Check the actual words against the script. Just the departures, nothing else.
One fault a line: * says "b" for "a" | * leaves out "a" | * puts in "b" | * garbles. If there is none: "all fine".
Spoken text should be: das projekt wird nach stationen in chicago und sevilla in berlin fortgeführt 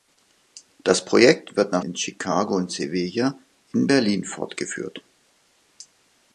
* leaves out "stationen"